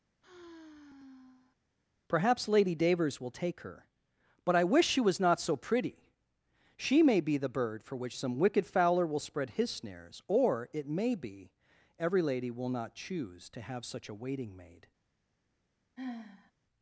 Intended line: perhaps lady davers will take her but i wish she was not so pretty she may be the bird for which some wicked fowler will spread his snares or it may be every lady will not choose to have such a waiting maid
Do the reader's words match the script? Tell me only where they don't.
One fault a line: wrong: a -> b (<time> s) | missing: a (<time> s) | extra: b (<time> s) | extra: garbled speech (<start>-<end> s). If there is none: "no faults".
no faults